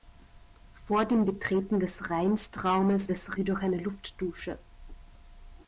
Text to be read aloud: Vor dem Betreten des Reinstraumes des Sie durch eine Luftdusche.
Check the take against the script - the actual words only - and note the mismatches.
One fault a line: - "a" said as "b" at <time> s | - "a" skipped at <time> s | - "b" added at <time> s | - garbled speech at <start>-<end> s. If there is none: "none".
none